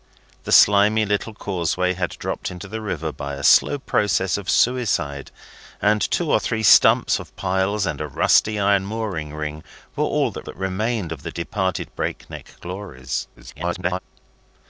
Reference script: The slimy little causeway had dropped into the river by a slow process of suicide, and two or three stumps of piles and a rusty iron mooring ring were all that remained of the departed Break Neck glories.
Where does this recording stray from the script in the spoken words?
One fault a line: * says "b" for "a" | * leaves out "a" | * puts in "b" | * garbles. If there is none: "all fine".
* puts in "that"
* garbles